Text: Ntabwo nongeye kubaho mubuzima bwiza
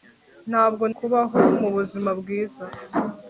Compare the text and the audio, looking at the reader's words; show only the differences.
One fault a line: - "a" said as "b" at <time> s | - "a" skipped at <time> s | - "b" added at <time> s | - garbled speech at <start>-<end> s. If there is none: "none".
- "nongeye" skipped at 0.8 s